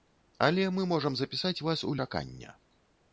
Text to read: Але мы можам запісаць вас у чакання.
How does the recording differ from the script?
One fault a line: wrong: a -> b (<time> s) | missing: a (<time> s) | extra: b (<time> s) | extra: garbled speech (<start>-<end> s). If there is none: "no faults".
no faults